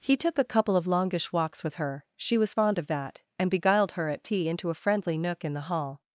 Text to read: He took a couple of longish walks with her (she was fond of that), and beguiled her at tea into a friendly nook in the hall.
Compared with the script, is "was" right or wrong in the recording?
right